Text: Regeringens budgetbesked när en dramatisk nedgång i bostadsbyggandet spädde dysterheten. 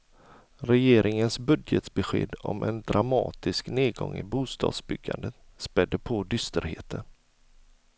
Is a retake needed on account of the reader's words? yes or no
yes